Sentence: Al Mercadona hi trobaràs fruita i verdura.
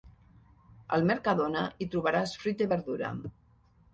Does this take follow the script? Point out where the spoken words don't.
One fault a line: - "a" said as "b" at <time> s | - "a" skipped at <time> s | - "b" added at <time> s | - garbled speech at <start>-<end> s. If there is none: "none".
none